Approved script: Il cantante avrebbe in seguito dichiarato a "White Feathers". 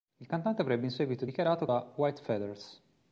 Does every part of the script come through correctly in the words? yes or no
yes